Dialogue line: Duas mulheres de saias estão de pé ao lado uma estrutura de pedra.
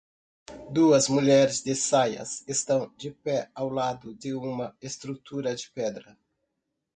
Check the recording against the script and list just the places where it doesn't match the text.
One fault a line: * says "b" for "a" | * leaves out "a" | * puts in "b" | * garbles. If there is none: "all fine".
* puts in "de"